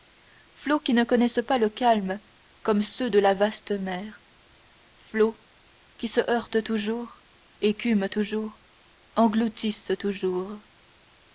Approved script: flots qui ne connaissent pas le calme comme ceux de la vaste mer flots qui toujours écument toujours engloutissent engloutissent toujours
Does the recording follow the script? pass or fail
fail